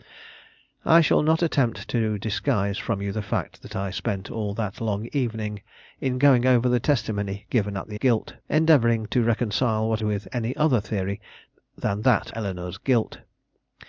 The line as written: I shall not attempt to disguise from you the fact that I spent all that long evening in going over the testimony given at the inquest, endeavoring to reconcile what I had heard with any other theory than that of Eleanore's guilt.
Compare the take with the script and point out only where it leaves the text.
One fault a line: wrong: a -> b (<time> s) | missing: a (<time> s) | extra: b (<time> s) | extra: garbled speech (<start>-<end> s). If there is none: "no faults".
wrong: inquest -> guilt (7.9 s)
missing: I had heard (10.0 s)
missing: of (12.3 s)